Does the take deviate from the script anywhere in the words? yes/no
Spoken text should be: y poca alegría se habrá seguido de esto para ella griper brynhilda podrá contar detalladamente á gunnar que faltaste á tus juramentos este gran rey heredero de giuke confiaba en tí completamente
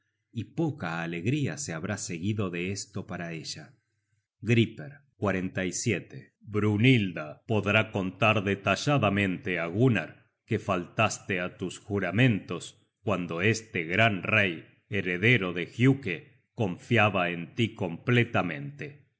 yes